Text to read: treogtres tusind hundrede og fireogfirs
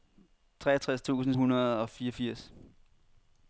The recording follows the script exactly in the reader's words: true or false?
true